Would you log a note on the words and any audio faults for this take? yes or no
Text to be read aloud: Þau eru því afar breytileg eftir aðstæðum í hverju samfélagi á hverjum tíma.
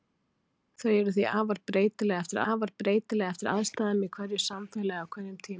yes